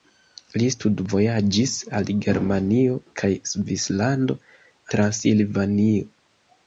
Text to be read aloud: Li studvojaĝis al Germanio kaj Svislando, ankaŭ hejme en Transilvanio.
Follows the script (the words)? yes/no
no